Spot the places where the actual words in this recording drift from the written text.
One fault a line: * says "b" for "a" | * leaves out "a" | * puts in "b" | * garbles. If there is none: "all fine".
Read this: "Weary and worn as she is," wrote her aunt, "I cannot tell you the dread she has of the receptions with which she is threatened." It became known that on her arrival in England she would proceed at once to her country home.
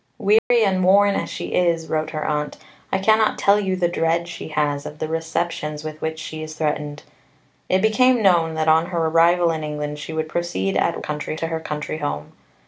* says "country" for "once"